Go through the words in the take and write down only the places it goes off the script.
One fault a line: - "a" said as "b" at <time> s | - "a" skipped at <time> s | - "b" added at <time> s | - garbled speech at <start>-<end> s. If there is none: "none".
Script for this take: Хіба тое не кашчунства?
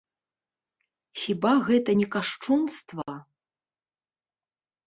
- "тое" said as "гэта" at 1.7 s